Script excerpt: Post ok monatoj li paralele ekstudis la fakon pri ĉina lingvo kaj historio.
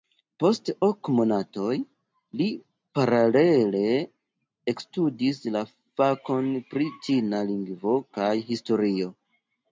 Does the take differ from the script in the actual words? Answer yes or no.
no